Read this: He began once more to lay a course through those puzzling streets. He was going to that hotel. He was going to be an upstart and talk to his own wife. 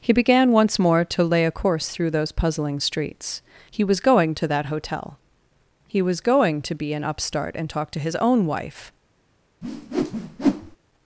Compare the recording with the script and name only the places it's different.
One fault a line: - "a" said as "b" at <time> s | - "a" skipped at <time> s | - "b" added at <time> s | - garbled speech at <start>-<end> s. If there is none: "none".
none